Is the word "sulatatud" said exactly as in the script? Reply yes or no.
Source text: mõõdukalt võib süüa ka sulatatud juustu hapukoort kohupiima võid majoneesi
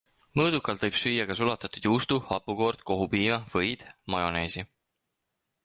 yes